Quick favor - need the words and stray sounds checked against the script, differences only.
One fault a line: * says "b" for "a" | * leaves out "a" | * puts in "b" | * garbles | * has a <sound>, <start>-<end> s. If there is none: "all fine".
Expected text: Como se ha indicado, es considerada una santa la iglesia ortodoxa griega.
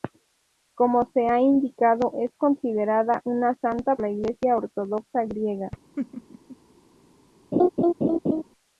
* has a laugh, 6.0-6.6 s
* has a laugh, 7.5-8.4 s